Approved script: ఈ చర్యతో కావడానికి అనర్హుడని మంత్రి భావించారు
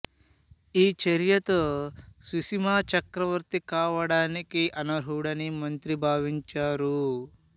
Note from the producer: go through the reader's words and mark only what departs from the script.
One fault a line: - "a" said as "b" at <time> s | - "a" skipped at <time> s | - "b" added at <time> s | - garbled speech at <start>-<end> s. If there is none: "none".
- "సుశిమా చక్రవర్తి" added at 2.2 s